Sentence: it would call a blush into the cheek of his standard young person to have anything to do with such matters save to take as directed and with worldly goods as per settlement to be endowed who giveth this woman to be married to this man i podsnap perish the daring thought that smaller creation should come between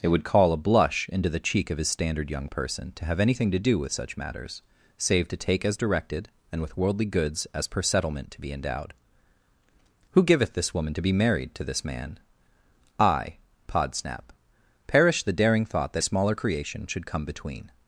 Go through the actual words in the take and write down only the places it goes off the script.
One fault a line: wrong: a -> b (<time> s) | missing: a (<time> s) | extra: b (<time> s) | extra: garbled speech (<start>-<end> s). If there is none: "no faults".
no faults